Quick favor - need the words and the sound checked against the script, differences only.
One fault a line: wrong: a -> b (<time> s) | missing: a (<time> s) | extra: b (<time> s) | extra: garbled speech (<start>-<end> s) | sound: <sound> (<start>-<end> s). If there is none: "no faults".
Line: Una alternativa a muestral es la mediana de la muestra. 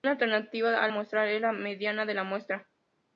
no faults